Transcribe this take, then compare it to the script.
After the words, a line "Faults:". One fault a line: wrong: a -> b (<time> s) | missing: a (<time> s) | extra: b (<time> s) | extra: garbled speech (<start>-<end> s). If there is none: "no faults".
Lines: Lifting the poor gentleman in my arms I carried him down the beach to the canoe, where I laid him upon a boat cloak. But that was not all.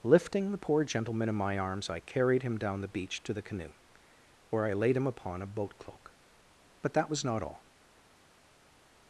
Lifting the poor gentleman in my arms I carried him down the beach to the canoe, where I laid him upon a boat cloak. But that was not all.
Faults:
no faults